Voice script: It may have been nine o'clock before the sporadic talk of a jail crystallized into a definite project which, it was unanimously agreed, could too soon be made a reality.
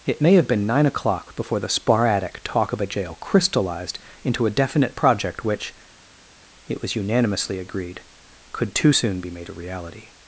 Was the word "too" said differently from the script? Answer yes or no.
no